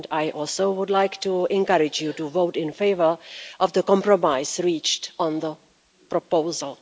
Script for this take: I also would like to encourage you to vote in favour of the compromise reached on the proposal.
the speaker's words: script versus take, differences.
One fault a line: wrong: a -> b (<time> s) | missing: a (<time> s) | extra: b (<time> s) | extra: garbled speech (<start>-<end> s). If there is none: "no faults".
no faults